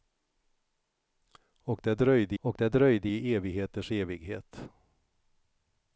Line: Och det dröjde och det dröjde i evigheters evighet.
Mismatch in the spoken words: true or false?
false